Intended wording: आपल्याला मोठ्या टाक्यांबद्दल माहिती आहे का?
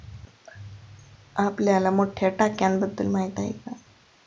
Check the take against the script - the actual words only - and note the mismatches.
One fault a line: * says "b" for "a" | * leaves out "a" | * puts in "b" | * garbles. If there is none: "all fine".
all fine